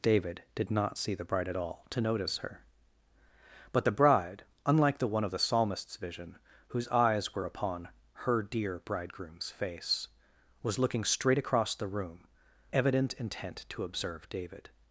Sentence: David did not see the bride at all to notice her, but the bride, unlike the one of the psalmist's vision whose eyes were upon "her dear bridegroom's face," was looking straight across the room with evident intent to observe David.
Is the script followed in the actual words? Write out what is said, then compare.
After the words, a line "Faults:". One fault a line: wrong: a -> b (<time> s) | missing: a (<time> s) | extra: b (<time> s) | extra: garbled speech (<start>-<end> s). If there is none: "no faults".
David did not see the bride at all to notice her, but the bride, unlike the one of the psalmist's vision whose eyes were upon "her dear bridegroom's face," was looking straight across the room evident intent to observe David.
Faults:
missing: with (12.3 s)